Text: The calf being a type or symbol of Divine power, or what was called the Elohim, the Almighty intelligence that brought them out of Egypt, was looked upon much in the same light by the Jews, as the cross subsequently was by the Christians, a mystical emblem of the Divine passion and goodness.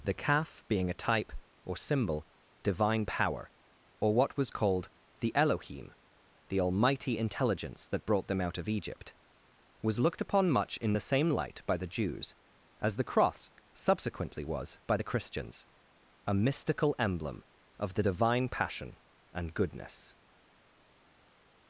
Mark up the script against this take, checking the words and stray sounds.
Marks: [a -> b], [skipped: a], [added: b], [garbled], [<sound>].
The calf being a type or symbol [skipped: of] Divine power, or what was called the Elohim, the Almighty intelligence that brought them out of Egypt, was looked upon much in the same light by the Jews, as the cross subsequently was by the Christians, a mystical emblem of the Divine passion and goodness.